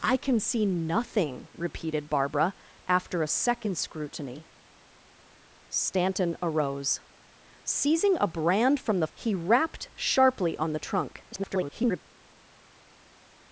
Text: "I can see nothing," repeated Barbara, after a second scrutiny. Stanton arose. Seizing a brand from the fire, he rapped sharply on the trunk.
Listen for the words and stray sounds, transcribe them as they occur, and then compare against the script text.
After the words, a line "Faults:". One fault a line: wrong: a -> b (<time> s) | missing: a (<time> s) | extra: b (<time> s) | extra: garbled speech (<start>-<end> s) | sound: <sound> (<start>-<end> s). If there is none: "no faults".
"I can see nothing," repeated Barbara, after a second scrutiny. Stanton arose. Seizing a brand from the he rapped sharply on the trunk. [garbled]
Faults:
missing: fire (9.1 s)
extra: garbled speech (11.3-12.0 s)